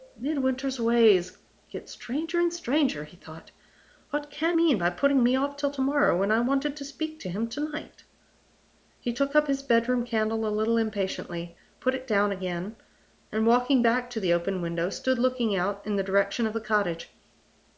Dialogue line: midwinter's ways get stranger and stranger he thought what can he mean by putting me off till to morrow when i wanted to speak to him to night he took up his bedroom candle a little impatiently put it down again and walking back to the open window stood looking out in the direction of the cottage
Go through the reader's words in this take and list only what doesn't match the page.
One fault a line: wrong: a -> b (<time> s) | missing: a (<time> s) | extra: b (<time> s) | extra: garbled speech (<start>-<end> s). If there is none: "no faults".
missing: he (4.6 s)